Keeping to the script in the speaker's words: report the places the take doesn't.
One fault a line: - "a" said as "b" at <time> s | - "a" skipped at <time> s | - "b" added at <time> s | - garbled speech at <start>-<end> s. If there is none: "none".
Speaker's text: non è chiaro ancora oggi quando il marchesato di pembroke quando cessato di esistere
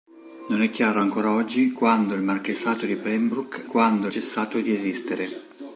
none